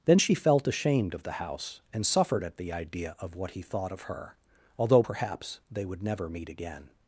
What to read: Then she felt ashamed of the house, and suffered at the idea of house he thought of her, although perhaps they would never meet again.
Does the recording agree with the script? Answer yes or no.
no